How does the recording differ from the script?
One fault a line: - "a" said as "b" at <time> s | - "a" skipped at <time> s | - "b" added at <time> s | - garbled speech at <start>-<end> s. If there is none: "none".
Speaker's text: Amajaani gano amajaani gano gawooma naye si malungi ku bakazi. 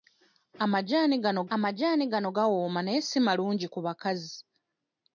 none